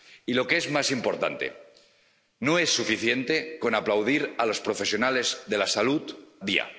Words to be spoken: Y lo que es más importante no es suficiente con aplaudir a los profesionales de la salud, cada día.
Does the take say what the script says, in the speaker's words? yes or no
no